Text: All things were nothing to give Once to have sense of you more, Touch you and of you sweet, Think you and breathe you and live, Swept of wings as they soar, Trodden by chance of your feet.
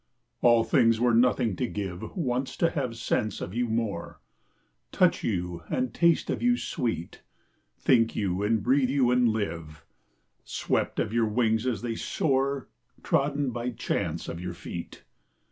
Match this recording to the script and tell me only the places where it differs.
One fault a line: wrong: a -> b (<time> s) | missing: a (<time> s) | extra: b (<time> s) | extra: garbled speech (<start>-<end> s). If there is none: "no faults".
extra: taste (5.9 s)
extra: your (11.1 s)